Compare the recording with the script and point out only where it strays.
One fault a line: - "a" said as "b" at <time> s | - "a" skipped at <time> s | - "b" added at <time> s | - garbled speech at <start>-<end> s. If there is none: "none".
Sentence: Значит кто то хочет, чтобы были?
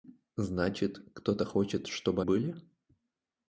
none